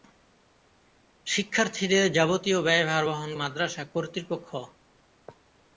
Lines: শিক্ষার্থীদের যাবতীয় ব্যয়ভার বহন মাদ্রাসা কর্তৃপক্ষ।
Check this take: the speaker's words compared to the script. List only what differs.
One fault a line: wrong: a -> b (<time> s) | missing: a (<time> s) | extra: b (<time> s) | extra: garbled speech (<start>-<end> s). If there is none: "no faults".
no faults